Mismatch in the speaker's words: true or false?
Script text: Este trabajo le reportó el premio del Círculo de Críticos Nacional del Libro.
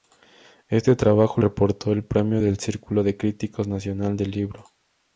true